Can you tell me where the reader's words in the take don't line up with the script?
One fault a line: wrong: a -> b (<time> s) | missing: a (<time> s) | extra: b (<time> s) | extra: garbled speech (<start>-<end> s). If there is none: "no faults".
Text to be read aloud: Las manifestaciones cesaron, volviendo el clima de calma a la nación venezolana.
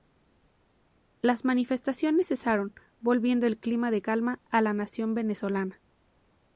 no faults